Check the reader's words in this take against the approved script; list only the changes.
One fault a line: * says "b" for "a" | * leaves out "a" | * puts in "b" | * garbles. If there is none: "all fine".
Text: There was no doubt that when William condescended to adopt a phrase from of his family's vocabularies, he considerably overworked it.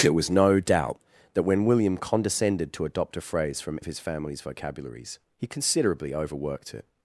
all fine